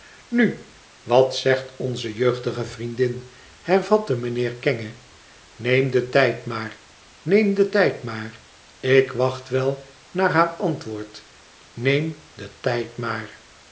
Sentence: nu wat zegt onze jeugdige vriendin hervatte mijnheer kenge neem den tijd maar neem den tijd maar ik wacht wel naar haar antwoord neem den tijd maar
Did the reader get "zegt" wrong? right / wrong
right